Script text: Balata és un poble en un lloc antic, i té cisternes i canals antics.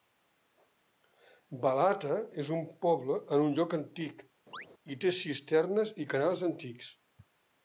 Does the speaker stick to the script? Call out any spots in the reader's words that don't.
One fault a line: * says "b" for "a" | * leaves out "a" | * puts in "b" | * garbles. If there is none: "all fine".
all fine